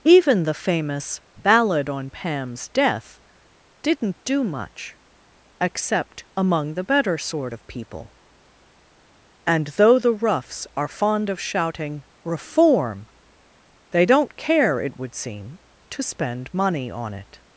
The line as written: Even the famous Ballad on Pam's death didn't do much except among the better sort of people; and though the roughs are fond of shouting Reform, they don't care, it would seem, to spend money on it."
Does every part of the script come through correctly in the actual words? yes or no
yes